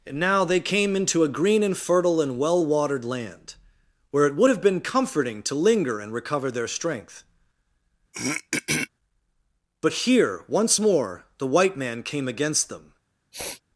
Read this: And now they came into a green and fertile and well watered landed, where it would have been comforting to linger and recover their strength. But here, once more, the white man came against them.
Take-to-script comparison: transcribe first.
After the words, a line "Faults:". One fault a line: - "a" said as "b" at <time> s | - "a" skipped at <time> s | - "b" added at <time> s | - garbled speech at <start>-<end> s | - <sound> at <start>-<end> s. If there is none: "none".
And now they came into a green and fertile and well watered land, where it would have been comforting to linger and recover their strength. But here, once more, the white man came against them.
Faults:
- "landed" said as "land" at 3.0 s
- throat clearing at 8.1-8.9 s
- sniff at 13.3-13.6 s